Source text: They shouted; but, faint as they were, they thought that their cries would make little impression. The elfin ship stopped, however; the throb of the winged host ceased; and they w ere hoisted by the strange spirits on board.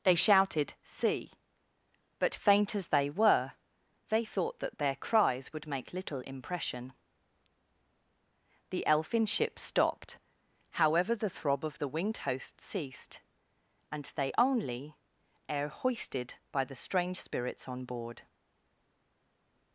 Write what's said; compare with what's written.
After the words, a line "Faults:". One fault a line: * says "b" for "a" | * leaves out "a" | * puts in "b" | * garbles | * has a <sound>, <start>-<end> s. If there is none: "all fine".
They shouted; see but, faint as they were, they thought that their cries would make little impression. The elfin ship stopped, however; the throb of the winged host ceased; and they only ere hoisted by the strange spirits on board.
Faults:
* puts in "see"
* says "only" for "w"